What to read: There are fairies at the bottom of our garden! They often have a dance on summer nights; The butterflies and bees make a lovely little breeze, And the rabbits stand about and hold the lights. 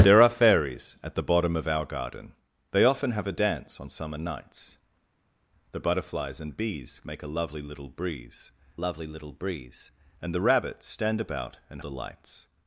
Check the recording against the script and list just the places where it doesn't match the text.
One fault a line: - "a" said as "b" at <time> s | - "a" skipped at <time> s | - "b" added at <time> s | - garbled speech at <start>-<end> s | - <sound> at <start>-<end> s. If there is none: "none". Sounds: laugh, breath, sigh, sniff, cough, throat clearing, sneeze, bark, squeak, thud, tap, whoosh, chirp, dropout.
- "lovely little breeze" added at 8.8 s
- "hold" skipped at 11.8 s